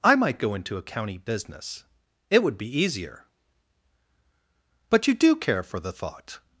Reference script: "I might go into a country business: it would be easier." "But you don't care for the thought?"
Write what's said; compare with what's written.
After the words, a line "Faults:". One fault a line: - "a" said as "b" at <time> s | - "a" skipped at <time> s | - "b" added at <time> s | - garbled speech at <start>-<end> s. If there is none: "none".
"I might go into a county business: it would be easier." "But you do care for the thought?"
Faults:
- "country" said as "county" at 0.8 s
- "don't" said as "do" at 5.1 s